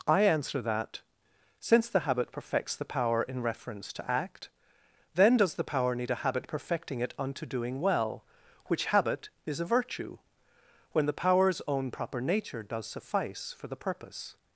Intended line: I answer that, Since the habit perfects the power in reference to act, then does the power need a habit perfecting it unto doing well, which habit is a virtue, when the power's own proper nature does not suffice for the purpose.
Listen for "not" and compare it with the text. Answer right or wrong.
wrong